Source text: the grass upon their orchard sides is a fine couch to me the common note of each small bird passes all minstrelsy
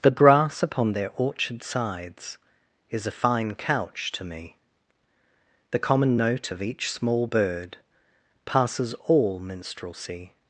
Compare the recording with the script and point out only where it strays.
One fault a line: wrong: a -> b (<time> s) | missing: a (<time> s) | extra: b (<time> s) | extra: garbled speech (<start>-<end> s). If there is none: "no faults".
no faults